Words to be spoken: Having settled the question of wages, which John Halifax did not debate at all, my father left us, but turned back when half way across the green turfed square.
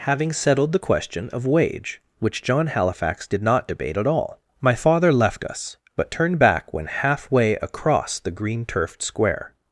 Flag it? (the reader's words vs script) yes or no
yes